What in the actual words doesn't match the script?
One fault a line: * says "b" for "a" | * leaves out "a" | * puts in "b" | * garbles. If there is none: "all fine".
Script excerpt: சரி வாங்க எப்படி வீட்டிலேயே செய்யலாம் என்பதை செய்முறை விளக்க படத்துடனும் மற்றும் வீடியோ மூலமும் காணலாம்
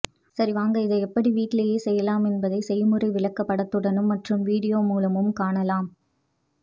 * puts in "இதை"